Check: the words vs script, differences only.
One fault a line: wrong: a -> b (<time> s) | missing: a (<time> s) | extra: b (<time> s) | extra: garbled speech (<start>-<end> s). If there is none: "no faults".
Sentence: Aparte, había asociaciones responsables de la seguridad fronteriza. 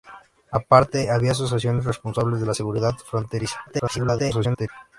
extra: garbled speech (3.7-4.7 s)